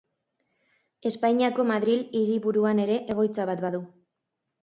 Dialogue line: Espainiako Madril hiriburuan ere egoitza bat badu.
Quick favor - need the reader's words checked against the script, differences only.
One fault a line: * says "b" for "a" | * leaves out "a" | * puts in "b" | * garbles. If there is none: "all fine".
all fine